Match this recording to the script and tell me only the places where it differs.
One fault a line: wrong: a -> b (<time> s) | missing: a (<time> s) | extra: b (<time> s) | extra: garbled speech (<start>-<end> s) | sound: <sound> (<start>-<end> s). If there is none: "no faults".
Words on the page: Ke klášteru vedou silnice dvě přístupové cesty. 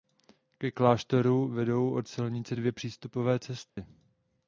extra: od (1.9 s)
sound: dropout (3.7-3.8 s)